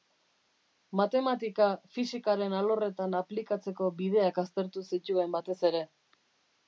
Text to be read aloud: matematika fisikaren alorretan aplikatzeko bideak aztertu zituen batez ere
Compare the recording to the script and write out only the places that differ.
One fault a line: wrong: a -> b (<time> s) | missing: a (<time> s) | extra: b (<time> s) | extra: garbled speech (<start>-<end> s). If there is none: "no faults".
no faults